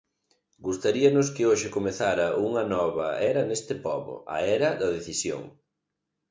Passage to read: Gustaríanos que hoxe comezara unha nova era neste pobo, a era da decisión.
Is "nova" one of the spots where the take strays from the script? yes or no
no